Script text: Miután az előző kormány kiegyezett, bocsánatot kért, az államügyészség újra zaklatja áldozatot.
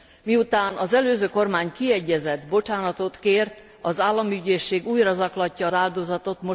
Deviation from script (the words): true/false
false